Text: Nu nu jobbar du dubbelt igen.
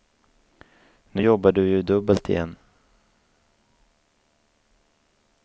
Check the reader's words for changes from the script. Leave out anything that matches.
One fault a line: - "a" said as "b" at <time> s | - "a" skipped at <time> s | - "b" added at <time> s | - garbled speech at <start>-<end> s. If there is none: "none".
- "nu" skipped at 1.2 s
- "ju" added at 1.6 s